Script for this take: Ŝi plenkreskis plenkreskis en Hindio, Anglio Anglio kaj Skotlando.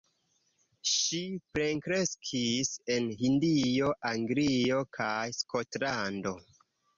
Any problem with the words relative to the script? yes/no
yes